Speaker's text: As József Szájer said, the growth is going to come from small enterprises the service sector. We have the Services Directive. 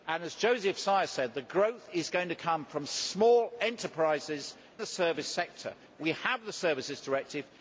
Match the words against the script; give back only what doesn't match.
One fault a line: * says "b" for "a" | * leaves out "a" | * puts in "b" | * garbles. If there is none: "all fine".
all fine